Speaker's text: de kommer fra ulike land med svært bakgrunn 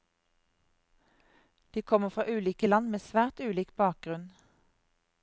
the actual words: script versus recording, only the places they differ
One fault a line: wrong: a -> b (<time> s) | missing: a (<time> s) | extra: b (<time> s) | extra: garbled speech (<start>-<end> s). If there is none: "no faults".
extra: ulik (3.5 s)